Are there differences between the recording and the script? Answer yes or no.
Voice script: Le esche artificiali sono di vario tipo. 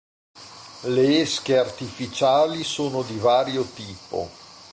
no